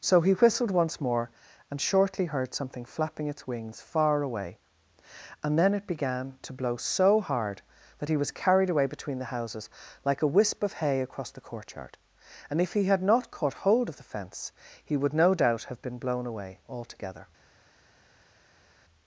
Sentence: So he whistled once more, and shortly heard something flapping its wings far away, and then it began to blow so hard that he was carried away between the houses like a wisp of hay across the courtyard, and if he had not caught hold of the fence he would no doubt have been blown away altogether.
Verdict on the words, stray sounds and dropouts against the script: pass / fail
pass